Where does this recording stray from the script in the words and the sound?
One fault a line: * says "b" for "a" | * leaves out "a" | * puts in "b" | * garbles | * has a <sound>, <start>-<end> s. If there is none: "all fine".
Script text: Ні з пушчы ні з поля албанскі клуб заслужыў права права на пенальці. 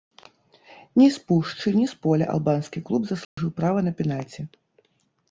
* has a dropout, 3.2-3.4 s
* leaves out "права"